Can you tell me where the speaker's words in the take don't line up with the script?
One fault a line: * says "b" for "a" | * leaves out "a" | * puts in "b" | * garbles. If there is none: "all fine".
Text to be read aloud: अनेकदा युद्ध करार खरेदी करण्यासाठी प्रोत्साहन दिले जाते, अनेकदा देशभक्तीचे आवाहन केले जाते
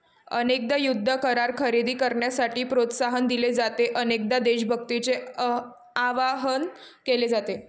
all fine